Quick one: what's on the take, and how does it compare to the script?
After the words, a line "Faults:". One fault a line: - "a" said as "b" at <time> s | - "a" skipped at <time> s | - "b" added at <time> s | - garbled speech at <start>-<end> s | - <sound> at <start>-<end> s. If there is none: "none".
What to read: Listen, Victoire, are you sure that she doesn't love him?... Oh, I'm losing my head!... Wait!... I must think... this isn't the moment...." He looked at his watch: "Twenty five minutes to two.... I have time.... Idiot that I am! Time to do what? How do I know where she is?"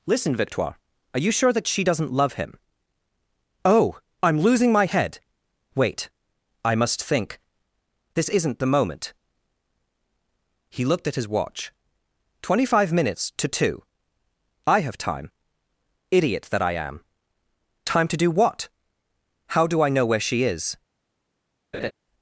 Listen, Victoire, are you sure that she doesn't love him?... Oh, I'm losing my head!... Wait!... I must think... this isn't the moment...." He looked at his watch: "Twenty five minutes to two.... I have time.... Idiot that I am! Time to do what? How do I know where she is?"
Faults:
- laugh at 21.7-21.9 s